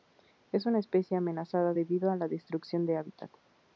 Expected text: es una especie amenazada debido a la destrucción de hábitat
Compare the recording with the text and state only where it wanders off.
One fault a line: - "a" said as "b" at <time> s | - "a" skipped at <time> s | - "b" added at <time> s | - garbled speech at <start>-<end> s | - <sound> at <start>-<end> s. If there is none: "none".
none